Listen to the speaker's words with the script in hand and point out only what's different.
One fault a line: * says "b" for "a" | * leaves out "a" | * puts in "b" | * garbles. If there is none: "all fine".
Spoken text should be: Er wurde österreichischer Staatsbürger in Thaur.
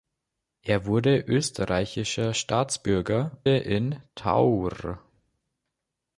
all fine